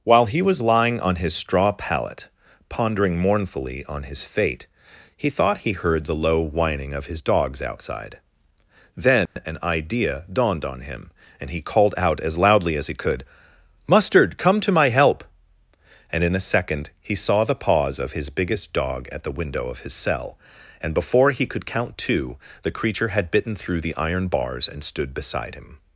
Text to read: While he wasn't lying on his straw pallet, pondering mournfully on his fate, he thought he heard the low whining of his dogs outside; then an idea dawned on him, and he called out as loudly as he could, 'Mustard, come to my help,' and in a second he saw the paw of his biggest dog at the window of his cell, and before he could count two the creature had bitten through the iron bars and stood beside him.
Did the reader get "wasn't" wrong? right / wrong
wrong